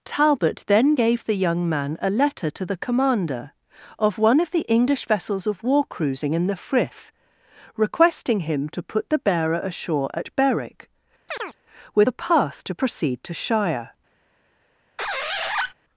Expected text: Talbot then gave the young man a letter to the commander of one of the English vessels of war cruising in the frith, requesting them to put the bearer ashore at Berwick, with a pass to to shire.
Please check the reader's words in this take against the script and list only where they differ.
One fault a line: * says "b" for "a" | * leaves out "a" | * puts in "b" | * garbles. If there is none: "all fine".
* says "him" for "them"
* puts in "proceed"